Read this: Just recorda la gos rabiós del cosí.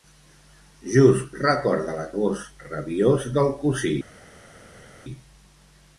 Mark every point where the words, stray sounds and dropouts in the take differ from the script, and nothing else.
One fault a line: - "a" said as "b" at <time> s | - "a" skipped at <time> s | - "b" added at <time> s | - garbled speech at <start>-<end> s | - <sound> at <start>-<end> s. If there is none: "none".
none